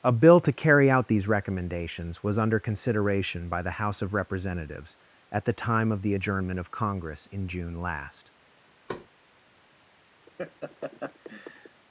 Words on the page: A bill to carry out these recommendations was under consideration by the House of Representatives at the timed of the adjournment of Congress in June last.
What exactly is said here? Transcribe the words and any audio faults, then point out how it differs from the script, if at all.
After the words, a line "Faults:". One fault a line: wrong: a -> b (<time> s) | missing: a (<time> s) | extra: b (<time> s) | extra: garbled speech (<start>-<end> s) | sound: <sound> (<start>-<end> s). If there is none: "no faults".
A bill to carry out these recommendations was under consideration by the House of Representatives at the time of the adjournment of Congress in June last.
Faults:
wrong: timed -> time (5.5 s)
sound: thud (8.9-9.1 s)
sound: laugh (10.3-11.8 s)